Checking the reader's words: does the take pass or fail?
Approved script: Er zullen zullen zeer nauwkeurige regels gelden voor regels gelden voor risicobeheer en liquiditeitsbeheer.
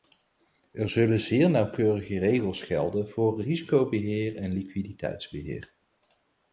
fail